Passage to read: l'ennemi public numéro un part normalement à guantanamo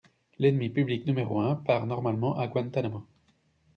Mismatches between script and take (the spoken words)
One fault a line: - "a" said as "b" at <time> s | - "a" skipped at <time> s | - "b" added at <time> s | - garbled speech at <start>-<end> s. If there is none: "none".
none